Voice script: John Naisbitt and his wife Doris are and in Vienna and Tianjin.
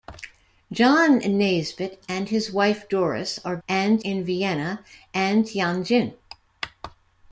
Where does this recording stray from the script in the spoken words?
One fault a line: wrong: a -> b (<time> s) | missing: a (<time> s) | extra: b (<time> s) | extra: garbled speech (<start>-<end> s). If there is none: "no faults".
no faults